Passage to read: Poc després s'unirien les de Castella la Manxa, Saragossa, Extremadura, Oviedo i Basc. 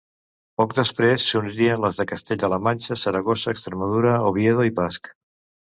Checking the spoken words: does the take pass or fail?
pass